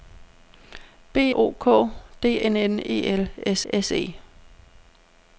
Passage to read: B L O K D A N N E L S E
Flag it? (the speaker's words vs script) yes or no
yes